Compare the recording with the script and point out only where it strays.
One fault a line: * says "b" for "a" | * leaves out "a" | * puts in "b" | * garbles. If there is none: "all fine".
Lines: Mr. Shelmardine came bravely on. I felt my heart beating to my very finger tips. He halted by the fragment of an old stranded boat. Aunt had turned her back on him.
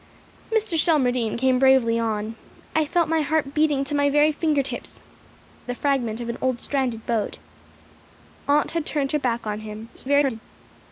* leaves out "He halted by"
* garbles